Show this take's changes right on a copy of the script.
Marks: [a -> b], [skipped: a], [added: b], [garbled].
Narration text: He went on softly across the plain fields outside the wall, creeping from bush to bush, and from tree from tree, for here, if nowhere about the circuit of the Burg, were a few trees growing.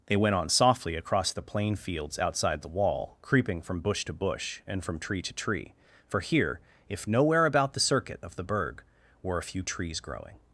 [He -> They] went on softly across the plain fields outside the wall, creeping from bush to bush, and from tree [from -> to] tree, for here, if nowhere about the circuit of the Burg, were a few trees growing.